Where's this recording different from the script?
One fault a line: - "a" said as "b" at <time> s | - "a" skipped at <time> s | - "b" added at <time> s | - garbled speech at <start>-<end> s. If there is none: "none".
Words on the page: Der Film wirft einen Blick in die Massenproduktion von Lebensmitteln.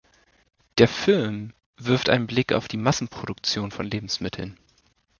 - "in" said as "auf" at 2.5 s